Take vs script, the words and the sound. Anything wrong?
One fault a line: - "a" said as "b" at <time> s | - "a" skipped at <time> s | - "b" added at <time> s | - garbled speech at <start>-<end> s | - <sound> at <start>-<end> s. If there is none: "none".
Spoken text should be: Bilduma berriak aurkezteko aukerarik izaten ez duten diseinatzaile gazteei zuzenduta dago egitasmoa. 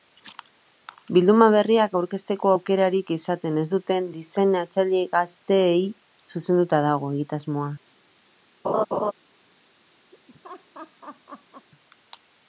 - laugh at 8.6-9.1 s
- laugh at 10.1-11.7 s